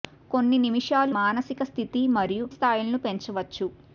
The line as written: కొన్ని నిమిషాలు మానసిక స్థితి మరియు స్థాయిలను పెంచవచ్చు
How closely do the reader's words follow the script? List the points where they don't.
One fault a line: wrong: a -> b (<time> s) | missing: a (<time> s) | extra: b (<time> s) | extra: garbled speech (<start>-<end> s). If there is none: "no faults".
no faults